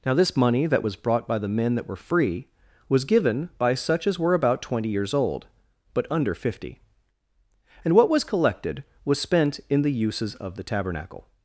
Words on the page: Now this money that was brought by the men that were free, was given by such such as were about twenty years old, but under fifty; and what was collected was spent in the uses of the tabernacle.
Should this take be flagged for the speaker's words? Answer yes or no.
yes